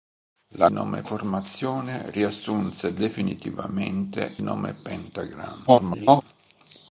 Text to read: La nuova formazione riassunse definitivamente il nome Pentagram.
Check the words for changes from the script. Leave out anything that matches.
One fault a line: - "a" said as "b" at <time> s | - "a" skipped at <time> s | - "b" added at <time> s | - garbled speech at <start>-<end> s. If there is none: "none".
- "nuova" said as "nome" at 0.7 s
- "il" skipped at 4.4 s
- garbled speech at 5.7-6.2 s